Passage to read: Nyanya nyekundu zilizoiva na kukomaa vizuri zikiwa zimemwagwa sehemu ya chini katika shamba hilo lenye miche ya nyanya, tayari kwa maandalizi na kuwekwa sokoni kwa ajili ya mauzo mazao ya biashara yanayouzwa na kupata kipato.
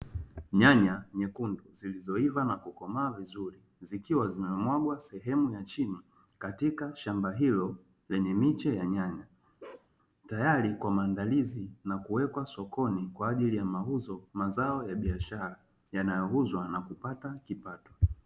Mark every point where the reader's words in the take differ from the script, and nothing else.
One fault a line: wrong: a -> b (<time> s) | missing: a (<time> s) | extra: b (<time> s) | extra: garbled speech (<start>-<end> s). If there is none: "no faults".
no faults